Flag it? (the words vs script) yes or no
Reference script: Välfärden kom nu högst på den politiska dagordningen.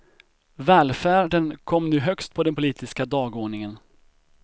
no